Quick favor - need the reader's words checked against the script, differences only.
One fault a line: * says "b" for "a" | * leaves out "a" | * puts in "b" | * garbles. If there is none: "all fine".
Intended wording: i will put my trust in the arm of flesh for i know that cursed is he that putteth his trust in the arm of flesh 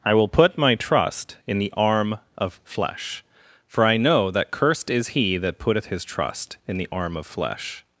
all fine